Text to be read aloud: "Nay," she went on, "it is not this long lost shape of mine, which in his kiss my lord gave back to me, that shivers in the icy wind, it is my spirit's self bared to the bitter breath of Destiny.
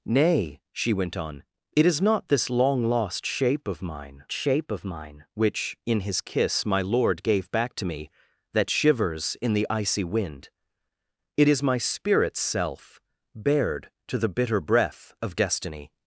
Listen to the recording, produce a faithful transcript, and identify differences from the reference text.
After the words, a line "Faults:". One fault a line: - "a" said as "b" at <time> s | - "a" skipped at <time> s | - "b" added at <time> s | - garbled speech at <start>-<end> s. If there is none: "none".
"Nay," she went on, "it is not this long lost shape of mine shape of mine, which in his kiss my lord gave back to me, that shivers in the icy wind, it is my spirit's self bared to the bitter breath of Destiny.
Faults:
- "shape of mine" added at 4.3 s